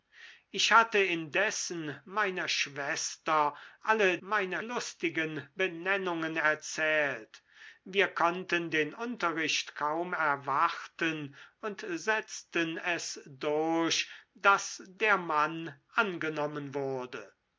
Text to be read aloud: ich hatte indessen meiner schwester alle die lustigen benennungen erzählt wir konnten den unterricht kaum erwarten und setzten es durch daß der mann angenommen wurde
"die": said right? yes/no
no